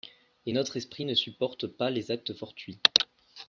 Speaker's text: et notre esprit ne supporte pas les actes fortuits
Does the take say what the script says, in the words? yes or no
yes